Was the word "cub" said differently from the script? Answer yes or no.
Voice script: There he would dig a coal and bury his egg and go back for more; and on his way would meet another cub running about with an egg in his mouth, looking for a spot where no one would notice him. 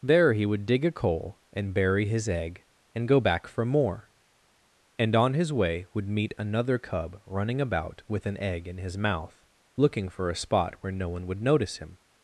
no